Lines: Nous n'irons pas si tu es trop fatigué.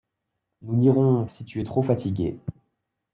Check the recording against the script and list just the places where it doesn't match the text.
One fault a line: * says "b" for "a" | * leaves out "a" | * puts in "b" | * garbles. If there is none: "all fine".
* leaves out "pas"